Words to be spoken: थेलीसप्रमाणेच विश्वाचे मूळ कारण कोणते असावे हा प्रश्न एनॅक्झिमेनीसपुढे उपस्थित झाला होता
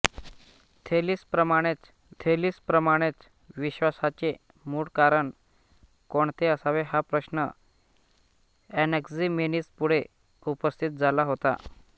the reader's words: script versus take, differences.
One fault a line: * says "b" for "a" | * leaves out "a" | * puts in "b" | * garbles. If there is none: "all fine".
* puts in "थेलीसप्रमाणेच"